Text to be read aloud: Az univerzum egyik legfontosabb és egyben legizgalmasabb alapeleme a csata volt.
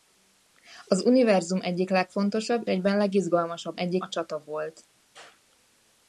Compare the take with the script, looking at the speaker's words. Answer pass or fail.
fail